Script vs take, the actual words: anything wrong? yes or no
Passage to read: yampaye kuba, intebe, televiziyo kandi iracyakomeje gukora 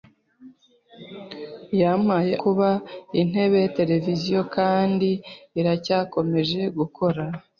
no